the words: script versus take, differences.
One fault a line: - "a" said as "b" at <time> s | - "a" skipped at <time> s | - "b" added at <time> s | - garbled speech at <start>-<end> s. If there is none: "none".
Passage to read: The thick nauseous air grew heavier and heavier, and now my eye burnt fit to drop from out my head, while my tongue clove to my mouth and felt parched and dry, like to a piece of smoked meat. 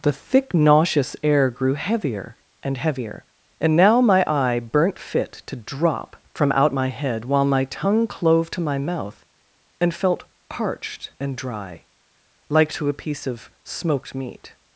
none